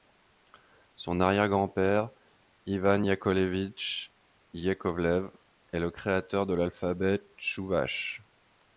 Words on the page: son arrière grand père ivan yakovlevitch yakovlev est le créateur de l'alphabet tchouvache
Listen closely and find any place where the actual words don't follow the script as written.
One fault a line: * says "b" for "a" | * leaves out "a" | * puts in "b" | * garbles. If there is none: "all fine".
all fine